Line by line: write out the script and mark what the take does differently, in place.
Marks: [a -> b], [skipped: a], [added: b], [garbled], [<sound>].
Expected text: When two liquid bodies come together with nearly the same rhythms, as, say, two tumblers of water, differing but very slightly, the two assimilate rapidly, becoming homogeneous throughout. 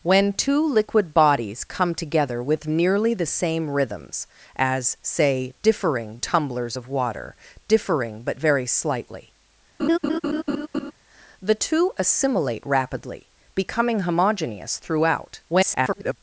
When two liquid bodies come together with nearly the same rhythms, as, say, [two -> differing] tumblers of water, differing but very slightly, [laugh] the two assimilate rapidly, becoming homogeneous throughout. [garbled]